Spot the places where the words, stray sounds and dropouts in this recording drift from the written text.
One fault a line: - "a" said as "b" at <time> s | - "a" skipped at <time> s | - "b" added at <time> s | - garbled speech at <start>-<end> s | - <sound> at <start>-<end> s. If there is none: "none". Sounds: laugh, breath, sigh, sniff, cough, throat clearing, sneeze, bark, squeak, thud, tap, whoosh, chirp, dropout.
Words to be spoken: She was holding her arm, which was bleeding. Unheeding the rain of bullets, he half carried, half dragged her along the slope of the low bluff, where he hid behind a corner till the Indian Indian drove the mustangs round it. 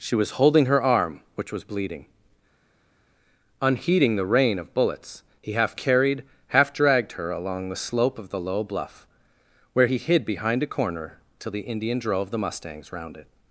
- "Indian" skipped at 12.0 s